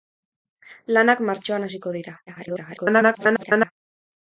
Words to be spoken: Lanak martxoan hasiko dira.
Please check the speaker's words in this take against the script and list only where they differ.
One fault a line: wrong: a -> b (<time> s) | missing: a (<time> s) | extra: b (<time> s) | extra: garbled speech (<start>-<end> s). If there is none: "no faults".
extra: garbled speech (2.3-3.7 s)